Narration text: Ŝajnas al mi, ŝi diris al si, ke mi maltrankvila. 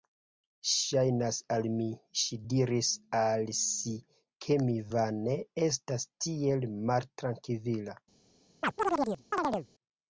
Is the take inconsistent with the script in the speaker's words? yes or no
yes